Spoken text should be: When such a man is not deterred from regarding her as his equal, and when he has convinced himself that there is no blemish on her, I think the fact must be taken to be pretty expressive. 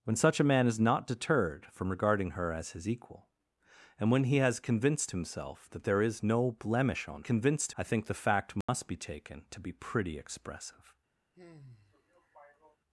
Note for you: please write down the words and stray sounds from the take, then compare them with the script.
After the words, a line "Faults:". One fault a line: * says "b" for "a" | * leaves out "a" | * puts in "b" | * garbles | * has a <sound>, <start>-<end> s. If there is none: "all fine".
When such a man is not deterred from regarding her as his equal, and when he has convinced himself that there is no blemish on convinced, I think the fact must be taken to be pretty expressive.
Faults:
* says "convinced" for "her"
* has a dropout, 8.6-8.7 s
* has a sigh, 11.3-12.8 s